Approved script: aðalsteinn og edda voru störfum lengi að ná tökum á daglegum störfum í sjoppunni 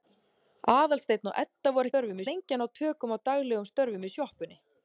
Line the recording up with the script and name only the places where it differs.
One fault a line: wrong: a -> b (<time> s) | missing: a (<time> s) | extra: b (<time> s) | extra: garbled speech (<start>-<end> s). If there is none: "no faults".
no faults